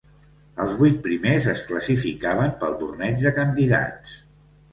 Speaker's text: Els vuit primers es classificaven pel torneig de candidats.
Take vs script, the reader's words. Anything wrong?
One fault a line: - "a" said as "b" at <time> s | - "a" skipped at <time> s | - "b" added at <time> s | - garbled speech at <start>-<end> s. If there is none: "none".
none